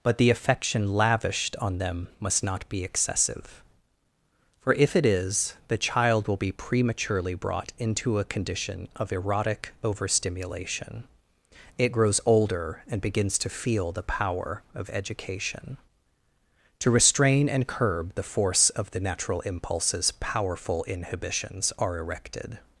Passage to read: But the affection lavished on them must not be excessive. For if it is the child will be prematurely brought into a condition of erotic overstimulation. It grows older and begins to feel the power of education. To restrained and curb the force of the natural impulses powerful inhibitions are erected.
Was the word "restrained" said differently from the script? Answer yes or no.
yes